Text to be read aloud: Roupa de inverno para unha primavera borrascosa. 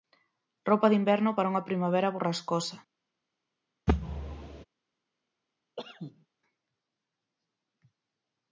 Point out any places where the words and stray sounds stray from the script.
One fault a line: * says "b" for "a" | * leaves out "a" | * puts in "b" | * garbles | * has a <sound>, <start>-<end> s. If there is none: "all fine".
* has a thud, 3.9-4.6 s
* has a cough, 5.8-6.3 s